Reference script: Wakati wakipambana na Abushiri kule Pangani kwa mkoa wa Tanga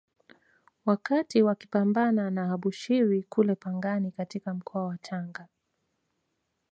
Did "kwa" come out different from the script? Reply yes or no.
yes